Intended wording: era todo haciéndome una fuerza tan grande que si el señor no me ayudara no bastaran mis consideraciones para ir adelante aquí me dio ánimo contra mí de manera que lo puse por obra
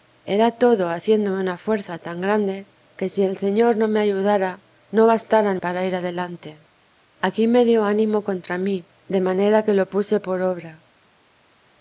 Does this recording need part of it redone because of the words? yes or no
yes